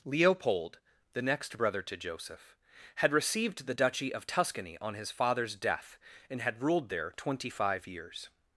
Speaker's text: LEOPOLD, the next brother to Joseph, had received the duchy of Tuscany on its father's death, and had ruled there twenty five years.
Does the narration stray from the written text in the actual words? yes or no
yes